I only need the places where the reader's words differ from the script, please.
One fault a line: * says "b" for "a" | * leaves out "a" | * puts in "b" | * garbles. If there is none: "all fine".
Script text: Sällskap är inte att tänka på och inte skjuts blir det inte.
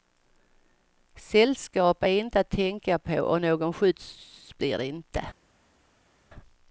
* says "någon" for "inte"